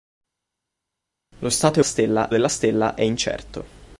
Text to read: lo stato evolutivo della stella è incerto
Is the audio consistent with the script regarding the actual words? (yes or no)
no